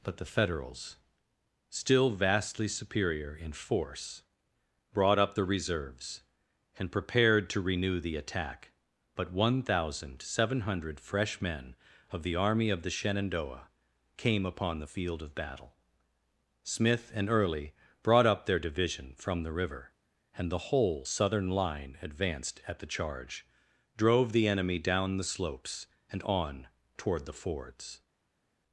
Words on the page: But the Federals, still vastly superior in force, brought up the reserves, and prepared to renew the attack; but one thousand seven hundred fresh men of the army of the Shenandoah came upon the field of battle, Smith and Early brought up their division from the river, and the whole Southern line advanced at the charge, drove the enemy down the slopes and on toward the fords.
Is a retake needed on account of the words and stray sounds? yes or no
no